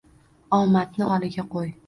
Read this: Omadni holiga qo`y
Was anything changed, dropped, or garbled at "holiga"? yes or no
no